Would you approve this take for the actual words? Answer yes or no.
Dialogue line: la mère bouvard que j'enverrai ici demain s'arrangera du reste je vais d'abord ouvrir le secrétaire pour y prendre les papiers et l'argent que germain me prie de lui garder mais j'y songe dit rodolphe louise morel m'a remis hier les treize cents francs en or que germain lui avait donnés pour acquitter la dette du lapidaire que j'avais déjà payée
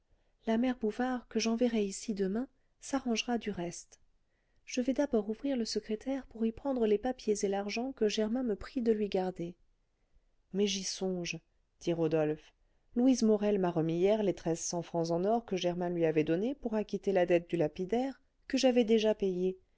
yes